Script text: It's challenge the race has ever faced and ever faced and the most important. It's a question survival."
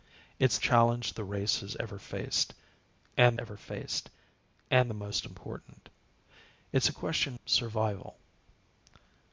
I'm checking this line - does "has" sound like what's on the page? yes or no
yes